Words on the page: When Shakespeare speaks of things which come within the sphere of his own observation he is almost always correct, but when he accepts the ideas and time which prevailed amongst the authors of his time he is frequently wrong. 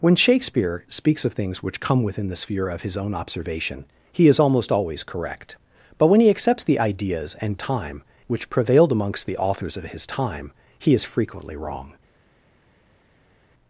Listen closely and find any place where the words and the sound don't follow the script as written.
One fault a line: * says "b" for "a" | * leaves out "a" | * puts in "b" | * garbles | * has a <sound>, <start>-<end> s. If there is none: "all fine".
all fine